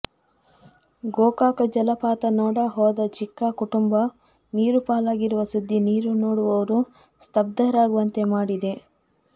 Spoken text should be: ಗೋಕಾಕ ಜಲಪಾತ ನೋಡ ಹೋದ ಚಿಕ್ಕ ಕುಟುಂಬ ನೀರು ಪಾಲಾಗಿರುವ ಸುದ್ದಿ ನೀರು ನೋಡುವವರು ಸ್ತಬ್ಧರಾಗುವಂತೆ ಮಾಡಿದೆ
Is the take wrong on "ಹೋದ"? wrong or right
right